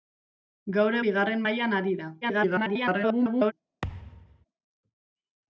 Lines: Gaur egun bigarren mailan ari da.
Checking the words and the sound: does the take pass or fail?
fail